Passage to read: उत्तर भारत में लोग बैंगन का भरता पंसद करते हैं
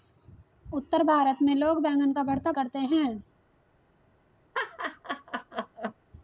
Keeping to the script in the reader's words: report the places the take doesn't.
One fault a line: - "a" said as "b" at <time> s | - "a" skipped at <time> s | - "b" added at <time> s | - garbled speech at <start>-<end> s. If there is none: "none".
- "पंसद" skipped at 2.5 s